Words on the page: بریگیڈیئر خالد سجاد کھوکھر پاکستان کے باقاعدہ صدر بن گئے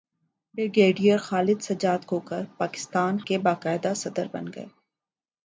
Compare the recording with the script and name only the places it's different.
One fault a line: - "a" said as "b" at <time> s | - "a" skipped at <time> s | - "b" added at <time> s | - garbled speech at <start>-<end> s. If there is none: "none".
none